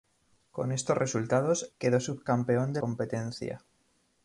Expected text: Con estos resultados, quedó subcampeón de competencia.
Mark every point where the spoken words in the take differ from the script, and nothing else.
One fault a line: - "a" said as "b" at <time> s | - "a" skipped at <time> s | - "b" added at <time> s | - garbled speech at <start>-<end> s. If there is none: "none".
none